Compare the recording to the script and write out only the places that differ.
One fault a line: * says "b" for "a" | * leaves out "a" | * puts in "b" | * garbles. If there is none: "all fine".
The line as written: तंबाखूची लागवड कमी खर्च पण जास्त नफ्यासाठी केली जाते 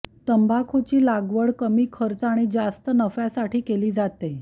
* says "आणि" for "पण"